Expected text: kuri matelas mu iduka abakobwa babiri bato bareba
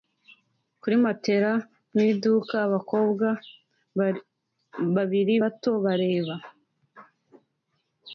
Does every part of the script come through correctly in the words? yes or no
yes